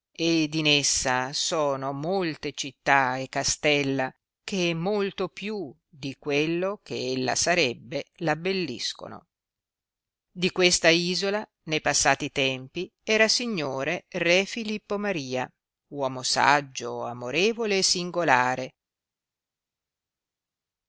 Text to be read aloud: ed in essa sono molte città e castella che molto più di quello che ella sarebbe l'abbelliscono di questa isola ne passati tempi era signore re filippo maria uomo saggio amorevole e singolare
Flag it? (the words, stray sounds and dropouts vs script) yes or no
no